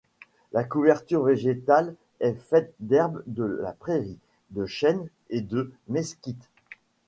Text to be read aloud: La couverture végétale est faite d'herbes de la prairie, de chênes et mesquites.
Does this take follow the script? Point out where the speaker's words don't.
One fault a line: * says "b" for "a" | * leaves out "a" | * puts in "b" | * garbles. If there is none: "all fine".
* puts in "de"